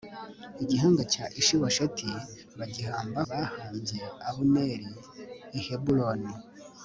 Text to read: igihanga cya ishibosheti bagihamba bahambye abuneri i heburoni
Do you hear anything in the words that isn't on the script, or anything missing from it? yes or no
no